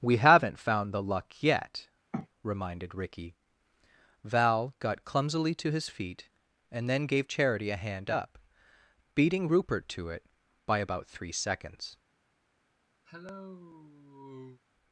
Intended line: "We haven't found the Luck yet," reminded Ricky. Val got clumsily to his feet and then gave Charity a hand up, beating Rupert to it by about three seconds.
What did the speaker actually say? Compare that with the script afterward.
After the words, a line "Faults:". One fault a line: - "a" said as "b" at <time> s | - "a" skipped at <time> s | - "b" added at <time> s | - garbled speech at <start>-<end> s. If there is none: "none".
"We haven't found the Luck yet," reminded Ricky. Val got clumsily to his feet and then gave Charity a hand up, beating Rupert to it by about three seconds.
Faults:
none